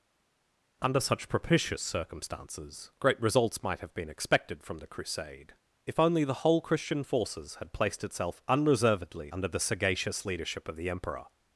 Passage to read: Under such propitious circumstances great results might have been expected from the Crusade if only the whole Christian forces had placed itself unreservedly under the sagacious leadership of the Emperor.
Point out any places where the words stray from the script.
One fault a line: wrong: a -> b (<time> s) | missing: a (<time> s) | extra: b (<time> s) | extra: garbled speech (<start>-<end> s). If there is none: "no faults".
no faults